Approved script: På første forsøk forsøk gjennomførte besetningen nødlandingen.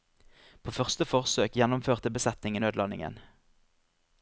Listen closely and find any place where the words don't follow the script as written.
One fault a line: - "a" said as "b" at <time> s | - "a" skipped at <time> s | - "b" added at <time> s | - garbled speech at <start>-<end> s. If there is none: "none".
- "forsøk" skipped at 1.5 s